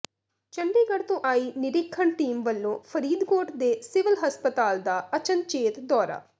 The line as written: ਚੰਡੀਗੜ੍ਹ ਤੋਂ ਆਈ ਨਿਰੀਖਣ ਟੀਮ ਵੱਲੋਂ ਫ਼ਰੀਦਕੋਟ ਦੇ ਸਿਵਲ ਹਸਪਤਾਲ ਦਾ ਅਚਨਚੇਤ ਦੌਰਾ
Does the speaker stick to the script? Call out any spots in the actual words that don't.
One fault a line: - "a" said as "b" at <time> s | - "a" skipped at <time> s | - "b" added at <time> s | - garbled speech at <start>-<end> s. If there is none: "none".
none